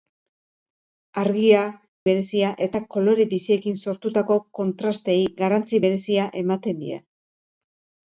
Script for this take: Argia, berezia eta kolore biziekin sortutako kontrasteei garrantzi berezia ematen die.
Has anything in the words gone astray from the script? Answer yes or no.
no